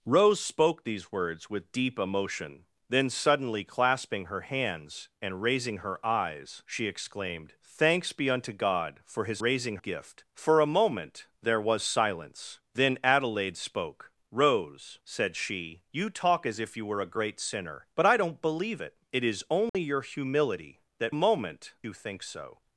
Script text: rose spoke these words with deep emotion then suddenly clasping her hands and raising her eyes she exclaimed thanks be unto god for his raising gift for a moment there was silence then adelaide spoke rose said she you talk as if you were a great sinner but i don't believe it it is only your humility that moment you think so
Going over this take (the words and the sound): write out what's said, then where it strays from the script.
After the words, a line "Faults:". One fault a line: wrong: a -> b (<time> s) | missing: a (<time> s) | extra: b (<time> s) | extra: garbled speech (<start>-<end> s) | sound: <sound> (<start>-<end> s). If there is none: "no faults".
rose spoke these words with deep emotion then suddenly clasping her hands and raising her eyes she exclaimed thanks be unto god for his raising gift for a moment there was silence then adelaide spoke rose said she you talk as if you were a great sinner but i don't believe it it is only your humility that moment you think so
Faults:
sound: dropout (19.7-19.7 s)